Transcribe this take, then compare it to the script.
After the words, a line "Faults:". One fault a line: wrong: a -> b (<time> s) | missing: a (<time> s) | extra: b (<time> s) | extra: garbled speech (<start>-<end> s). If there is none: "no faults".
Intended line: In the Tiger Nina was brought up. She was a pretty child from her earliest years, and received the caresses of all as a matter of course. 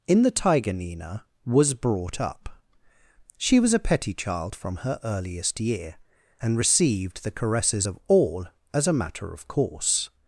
In the Tiger Nina was brought up. She was a petty child from her earliest year, and received the caresses of all as a matter of course.
Faults:
wrong: pretty -> petty (3.8 s)
wrong: years -> year (5.6 s)